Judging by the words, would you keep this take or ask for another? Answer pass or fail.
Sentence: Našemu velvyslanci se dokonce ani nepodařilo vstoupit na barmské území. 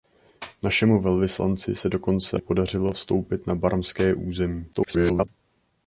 fail